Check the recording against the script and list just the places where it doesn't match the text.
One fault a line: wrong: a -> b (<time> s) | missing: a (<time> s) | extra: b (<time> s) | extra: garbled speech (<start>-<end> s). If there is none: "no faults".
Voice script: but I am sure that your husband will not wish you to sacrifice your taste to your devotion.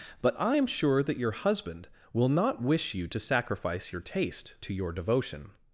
no faults